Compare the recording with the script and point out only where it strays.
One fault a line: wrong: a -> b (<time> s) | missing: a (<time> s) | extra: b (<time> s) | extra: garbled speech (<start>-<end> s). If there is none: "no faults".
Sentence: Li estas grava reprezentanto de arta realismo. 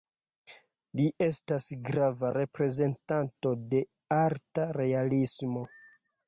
no faults